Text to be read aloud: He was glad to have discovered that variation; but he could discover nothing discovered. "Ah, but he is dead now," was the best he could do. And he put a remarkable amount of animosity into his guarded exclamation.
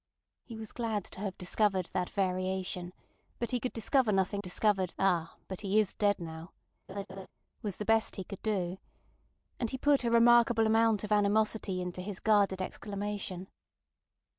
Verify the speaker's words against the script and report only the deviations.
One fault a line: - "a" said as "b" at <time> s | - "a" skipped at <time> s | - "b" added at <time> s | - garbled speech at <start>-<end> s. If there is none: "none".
none